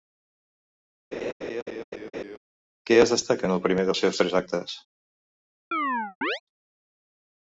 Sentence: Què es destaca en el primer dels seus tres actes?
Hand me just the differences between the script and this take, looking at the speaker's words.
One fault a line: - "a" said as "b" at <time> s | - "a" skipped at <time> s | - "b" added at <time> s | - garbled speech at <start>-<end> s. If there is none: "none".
none